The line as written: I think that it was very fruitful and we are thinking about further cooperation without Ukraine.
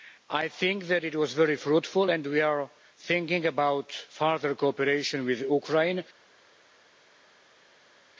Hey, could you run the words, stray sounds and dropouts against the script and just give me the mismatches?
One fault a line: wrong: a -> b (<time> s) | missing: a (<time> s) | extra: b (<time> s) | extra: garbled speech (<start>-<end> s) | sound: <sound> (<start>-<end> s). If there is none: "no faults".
wrong: without -> with (5.3 s)